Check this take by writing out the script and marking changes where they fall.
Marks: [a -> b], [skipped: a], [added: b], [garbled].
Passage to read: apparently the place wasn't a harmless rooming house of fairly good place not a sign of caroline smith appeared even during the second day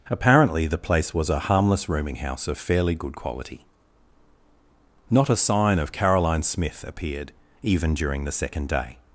apparently the place [wasn't -> was] a harmless rooming house of fairly good [place -> quality] not a sign of caroline smith appeared even during the second day